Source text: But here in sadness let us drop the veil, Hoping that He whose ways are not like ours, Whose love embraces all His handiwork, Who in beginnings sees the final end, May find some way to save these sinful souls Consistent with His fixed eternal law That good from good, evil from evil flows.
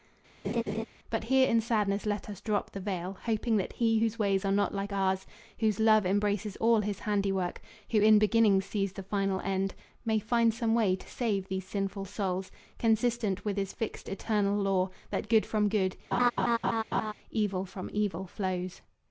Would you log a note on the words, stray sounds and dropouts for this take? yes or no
yes